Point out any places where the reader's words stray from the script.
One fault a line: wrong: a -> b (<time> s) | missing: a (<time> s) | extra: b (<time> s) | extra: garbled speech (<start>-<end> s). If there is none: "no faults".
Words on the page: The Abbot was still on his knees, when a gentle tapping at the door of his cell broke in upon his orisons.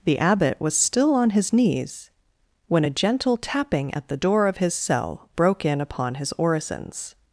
no faults